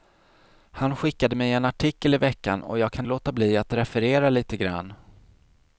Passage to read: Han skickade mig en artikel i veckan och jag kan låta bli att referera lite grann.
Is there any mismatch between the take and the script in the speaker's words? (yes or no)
no